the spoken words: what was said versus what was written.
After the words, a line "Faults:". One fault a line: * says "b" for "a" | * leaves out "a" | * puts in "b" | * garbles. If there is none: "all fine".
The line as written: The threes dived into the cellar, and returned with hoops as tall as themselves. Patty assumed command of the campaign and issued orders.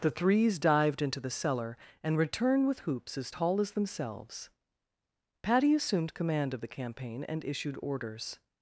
The threes dived into the cellar, and returned with hoops as tall as themselves. Patty assumed command of the campaign and issued orders.
Faults:
all fine